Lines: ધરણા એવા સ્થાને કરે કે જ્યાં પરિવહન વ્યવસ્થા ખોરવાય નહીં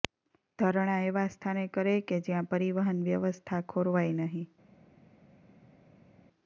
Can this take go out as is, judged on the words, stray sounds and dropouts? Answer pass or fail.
pass